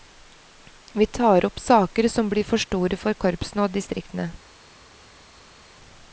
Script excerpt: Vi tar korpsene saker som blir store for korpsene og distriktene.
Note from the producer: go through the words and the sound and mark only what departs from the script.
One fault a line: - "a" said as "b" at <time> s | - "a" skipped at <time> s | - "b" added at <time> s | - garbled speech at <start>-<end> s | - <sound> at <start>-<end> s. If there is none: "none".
- "korpsene" said as "opp" at 1.4 s
- "for" added at 2.4 s